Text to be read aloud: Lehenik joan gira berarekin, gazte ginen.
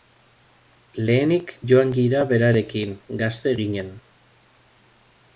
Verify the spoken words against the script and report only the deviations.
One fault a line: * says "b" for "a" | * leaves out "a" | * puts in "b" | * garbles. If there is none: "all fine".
all fine